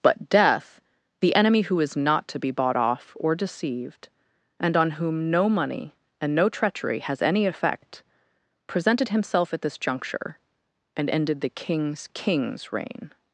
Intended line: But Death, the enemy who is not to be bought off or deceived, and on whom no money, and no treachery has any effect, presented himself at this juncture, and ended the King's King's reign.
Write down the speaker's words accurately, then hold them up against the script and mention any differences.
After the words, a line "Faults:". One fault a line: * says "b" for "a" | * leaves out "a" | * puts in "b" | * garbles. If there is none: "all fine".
But Death, the enemy who is not to be bought off or deceived, and on whom no money, and no treachery has any effect, presented himself at this juncture, and ended the King's King's reign.
Faults:
all fine